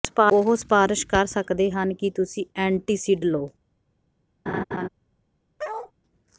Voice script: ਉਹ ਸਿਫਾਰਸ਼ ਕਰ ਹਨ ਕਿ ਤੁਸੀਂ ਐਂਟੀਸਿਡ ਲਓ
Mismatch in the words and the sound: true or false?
true